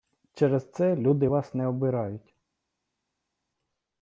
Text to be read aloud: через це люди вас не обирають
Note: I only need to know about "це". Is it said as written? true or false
true